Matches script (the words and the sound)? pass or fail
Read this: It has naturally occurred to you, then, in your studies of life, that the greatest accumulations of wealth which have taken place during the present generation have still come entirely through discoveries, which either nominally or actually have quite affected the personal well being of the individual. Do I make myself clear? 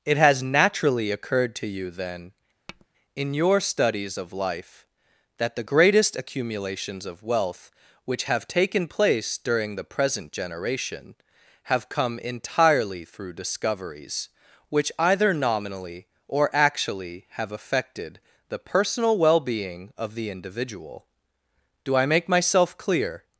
fail